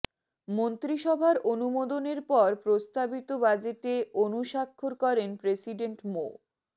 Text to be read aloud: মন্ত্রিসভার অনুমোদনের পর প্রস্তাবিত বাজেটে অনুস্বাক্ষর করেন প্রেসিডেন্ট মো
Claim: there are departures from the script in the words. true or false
false